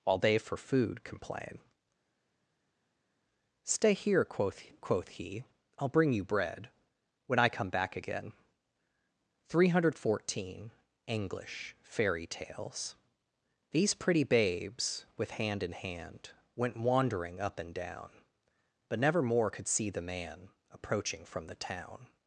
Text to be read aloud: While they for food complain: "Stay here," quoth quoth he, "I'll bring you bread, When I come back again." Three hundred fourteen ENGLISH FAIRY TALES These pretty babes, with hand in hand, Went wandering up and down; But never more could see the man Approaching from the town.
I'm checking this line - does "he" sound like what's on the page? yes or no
yes